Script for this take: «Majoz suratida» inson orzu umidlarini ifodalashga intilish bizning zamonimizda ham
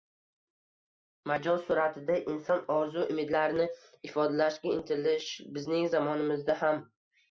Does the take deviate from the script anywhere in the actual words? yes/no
no